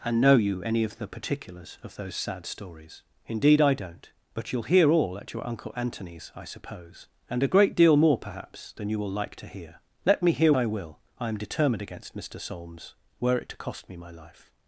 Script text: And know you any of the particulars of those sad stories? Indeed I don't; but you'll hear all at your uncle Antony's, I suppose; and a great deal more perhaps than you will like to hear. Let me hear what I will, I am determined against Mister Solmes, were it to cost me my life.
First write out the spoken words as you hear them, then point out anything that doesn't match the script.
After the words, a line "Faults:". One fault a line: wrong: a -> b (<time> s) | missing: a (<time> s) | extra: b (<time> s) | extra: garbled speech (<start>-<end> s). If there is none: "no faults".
And know you any of the particulars of those sad stories? Indeed I don't; but you'll hear all at your uncle Antony's, I suppose; and a great deal more perhaps than you will like to hear. Let me hear I will, I am determined against Mister Solmes, were it to cost me my life.
Faults:
missing: what (10.5 s)